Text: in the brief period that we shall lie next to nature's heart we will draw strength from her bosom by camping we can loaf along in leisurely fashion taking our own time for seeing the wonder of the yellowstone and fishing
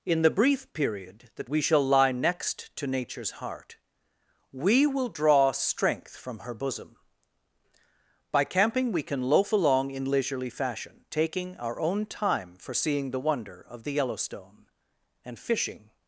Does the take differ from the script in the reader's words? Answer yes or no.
no